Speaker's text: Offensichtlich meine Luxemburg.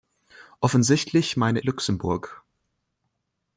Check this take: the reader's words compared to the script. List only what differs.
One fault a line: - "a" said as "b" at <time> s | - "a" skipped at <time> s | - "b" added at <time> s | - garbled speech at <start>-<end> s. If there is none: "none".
none